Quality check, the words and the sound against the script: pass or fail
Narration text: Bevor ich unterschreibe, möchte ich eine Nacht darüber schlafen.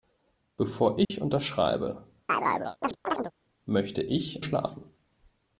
fail